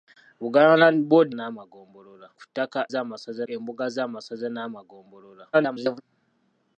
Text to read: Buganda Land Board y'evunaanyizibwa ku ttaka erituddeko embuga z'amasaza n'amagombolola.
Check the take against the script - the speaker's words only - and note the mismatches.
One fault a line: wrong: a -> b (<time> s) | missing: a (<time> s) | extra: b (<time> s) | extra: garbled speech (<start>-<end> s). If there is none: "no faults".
wrong: y'evunaanyizibwa -> n'amagombolola (1.3 s)
wrong: erituddeko -> z'amasaza (2.9 s)
extra: garbled speech (5.5-6.0 s)